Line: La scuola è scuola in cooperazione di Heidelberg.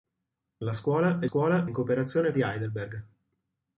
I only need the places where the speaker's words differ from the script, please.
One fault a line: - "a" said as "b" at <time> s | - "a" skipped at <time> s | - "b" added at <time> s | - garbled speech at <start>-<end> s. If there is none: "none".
none